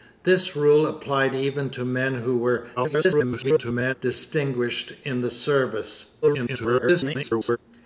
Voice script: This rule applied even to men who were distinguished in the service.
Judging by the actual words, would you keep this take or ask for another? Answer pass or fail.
fail